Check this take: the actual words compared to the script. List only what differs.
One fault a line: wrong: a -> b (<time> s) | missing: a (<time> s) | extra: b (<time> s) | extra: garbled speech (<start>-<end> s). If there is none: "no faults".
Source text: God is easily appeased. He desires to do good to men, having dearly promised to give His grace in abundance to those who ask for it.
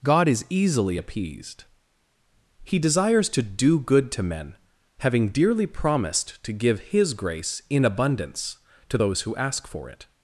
no faults